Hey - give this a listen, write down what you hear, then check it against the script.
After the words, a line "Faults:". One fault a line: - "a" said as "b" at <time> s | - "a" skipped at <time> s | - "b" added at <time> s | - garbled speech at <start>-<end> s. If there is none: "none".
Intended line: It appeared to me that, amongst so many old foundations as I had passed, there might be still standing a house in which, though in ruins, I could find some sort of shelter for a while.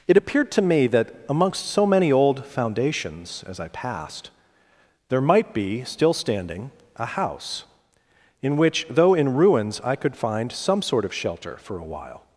It appeared to me that, amongst so many old foundations as I passed, there might be still standing a house in which, though in ruins, I could find some sort of shelter for a while.
Faults:
- "had" skipped at 3.7 s